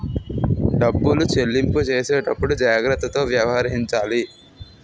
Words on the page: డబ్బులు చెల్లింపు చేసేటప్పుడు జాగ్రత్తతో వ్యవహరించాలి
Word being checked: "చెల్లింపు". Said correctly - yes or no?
yes